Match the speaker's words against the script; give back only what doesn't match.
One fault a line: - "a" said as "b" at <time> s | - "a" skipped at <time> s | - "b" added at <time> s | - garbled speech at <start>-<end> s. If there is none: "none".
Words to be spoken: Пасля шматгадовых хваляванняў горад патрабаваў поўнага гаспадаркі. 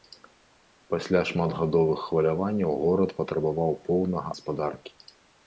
none